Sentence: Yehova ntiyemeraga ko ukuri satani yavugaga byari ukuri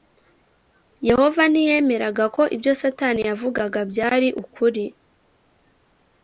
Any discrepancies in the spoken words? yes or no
yes